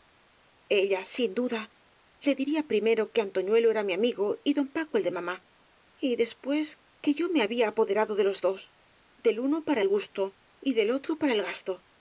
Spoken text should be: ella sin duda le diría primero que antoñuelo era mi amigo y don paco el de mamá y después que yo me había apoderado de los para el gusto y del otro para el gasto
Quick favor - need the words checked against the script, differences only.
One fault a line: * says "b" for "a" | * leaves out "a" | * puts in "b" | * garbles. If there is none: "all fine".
* puts in "dos del uno"